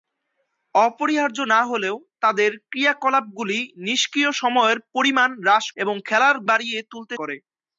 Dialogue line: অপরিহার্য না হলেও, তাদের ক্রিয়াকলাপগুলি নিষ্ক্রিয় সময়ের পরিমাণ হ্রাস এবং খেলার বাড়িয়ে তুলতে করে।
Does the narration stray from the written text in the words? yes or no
no